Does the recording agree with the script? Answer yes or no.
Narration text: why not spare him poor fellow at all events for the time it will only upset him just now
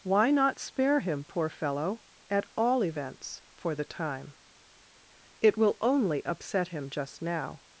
yes